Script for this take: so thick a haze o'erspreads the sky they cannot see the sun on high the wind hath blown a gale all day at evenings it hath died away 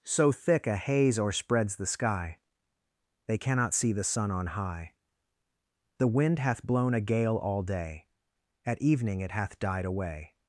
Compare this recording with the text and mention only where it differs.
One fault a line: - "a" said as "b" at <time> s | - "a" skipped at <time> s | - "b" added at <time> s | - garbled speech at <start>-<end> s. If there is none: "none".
- "evenings" said as "evening" at 8.8 s